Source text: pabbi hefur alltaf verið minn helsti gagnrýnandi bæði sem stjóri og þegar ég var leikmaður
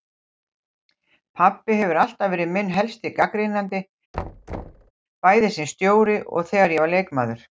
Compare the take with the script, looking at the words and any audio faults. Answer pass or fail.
fail